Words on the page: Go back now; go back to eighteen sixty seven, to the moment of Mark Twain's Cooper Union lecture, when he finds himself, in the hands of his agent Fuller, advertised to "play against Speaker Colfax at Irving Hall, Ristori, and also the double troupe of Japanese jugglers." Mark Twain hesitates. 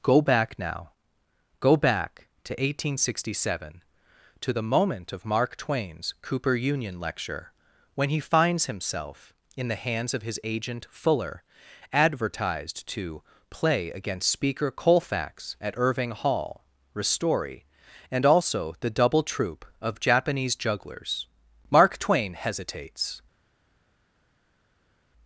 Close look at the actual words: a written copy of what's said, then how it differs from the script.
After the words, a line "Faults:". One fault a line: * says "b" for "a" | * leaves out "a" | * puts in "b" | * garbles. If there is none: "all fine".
Go back now; go back to eighteen sixty seven, to the moment of Mark Twain's Cooper Union lecture, when he finds himself, in the hands of his agent Fuller, advertised to "play against Speaker Colfax at Irving Hall, Ristori, and also the double troupe of Japanese jugglers." Mark Twain hesitates.
Faults:
all fine